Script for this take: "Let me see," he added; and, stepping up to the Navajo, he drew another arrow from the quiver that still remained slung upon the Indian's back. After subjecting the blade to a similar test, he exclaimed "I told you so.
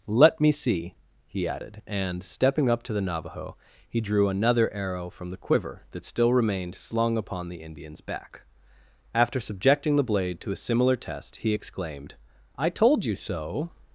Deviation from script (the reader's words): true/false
false